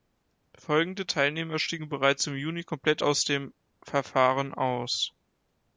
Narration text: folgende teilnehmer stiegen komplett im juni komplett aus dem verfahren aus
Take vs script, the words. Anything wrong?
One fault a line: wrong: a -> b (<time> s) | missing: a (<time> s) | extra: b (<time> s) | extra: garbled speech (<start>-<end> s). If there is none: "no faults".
wrong: komplett -> bereits (1.9 s)